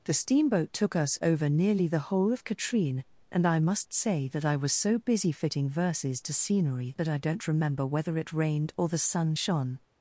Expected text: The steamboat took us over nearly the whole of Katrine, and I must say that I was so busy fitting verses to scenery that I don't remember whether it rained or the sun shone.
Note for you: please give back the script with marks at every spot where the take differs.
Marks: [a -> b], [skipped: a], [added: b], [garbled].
The steamboat took us over nearly the whole of Katrine, and I must say that I was so busy fitting verses to scenery that I don't remember whether it rained or the sun shone.